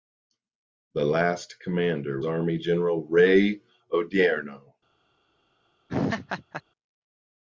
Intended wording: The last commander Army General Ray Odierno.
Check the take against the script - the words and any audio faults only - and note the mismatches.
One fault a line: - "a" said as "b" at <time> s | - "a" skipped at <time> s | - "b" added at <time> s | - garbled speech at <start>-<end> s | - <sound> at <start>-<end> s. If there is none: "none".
- laugh at 5.9-6.6 s